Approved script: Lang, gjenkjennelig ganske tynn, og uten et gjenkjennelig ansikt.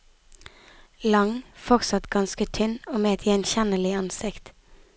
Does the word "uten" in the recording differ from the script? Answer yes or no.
yes